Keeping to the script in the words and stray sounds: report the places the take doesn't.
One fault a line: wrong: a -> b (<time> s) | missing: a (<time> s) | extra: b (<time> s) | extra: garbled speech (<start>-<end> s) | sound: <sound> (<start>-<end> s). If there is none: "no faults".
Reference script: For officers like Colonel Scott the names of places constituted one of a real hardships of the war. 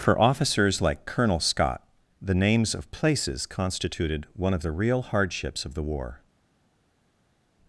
wrong: a -> the (4.6 s)